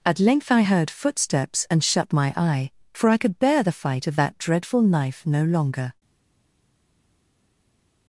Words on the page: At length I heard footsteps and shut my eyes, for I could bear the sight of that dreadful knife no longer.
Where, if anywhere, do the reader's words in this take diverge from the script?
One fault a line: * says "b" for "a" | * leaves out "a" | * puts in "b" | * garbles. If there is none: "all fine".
* says "eye" for "eyes"
* says "fight" for "sight"